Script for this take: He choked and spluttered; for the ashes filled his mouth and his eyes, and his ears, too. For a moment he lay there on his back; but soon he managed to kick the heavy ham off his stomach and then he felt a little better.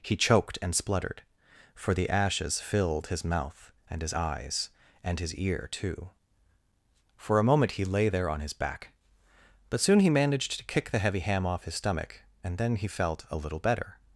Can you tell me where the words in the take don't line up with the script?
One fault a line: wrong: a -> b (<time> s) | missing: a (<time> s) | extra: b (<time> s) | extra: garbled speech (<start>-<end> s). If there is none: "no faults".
wrong: ears -> ear (5.3 s)